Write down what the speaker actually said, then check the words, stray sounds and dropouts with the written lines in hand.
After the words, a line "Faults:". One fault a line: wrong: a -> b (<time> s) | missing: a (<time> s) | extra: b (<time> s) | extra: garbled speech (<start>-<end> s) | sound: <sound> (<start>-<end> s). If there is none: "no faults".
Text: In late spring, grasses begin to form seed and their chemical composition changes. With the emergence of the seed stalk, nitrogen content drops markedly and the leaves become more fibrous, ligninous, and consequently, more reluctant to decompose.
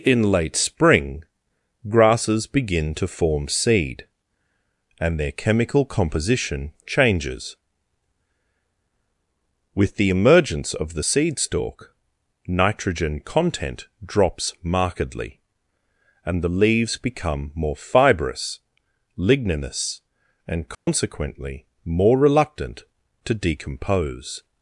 In late spring, grasses begin to form seed and their chemical composition changes. With the emergence of the seed stalk, nitrogen content drops markedly and the leaves become more fibrous, ligninous, and consequently, more reluctant to decompose.
Faults:
sound: dropout (20.7-20.9 s)